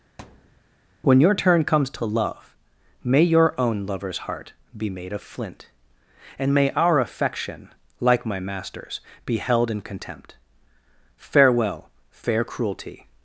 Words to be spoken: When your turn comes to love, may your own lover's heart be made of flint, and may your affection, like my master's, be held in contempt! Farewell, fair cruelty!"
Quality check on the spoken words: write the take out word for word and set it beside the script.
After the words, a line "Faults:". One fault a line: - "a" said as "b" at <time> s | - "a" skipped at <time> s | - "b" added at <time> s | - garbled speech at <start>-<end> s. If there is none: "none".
When your turn comes to love, may your own lover's heart be made of flint, and may our affection, like my master's, be held in contempt! Farewell, fair cruelty!"
Faults:
- "your" said as "our" at 6.7 s